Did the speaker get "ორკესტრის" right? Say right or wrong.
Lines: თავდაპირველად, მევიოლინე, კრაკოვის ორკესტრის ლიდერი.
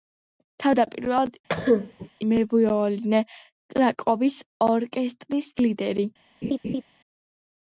right